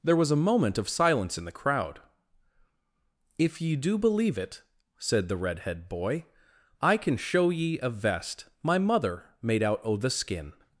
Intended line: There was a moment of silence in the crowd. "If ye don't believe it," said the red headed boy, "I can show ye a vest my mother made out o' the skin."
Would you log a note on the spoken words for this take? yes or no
yes